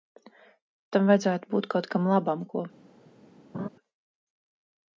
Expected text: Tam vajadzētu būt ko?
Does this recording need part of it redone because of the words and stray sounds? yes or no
yes